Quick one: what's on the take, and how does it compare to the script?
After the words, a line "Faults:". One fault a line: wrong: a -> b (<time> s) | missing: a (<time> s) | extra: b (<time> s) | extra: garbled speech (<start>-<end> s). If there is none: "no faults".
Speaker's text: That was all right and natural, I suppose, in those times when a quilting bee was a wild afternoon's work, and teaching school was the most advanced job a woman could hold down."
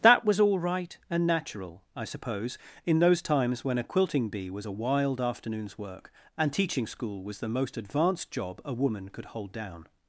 That was all right and natural, I suppose, in those times when a quilting bee was a wild afternoon's work, and teaching school was the most advanced job a woman could hold down."
Faults:
no faults